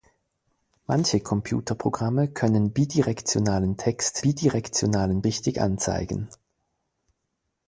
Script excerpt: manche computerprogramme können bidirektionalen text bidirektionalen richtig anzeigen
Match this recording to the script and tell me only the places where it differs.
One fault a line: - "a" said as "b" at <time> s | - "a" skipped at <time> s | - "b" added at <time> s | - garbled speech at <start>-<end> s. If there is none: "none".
none